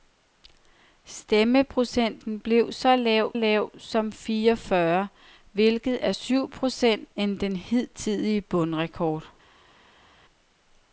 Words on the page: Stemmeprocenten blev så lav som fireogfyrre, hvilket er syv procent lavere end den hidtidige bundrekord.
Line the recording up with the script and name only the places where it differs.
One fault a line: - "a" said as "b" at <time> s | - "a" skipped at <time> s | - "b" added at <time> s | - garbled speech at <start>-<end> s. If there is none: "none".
- "lav" added at 3.3 s
- "lavere" skipped at 7.2 s